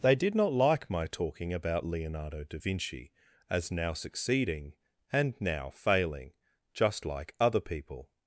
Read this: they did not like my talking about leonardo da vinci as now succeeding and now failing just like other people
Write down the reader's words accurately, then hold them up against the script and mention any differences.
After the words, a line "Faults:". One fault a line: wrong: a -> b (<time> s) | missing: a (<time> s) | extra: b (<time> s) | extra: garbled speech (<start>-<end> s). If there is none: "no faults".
they did not like my talking about leonardo da vinci as now succeeding and now failing just like other people
Faults:
no faults